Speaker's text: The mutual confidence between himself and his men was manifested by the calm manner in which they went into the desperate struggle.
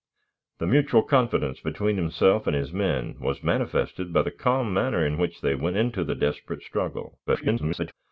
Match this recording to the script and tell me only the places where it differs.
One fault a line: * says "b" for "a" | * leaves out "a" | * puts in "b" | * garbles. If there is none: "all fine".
* garbles